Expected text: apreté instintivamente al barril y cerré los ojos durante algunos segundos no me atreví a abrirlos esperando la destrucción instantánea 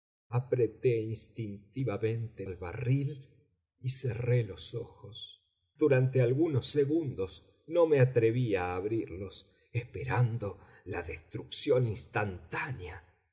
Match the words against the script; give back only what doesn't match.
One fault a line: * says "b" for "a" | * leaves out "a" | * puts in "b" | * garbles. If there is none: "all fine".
all fine